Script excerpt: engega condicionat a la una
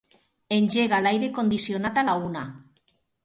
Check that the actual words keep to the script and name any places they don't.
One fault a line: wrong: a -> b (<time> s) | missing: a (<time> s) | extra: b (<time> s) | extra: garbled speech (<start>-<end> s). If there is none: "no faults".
extra: l'aire (1.1 s)